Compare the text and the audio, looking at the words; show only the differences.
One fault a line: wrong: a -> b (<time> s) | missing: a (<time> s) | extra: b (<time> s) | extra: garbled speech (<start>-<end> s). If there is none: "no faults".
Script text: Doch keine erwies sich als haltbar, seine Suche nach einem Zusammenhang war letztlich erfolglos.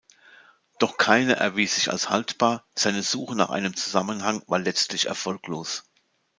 no faults